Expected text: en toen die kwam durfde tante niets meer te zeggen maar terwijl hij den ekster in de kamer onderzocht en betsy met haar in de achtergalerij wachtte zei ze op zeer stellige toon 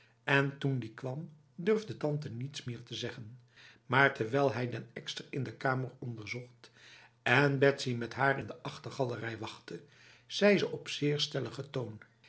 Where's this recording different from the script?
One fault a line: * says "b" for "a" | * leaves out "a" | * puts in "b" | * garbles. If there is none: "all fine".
all fine